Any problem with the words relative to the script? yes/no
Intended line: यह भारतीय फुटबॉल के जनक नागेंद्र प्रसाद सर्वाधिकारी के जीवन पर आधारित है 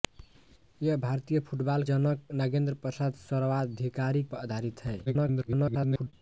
yes